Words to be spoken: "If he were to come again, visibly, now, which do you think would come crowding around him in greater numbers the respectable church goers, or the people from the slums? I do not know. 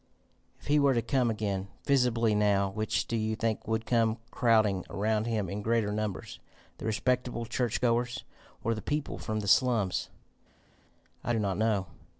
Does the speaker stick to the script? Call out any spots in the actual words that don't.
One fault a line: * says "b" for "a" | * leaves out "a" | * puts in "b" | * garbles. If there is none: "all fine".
all fine